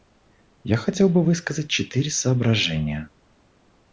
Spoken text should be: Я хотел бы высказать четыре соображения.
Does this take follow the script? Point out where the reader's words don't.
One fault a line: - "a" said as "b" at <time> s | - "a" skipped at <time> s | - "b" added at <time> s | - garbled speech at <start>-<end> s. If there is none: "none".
none